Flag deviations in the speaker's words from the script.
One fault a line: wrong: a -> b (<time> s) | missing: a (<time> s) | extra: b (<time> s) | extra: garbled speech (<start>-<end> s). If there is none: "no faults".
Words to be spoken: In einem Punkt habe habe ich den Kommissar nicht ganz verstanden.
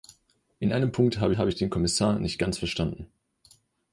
no faults